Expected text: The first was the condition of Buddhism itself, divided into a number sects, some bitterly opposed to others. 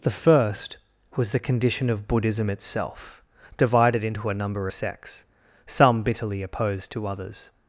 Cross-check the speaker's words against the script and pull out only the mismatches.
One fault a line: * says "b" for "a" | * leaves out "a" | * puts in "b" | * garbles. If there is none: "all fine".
all fine